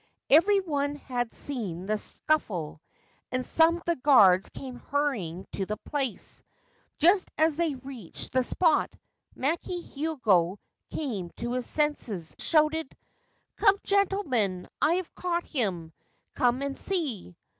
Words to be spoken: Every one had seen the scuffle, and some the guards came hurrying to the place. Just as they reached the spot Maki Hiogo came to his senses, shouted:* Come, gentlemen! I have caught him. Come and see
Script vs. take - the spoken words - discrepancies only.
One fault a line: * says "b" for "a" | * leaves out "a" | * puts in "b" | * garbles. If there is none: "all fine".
all fine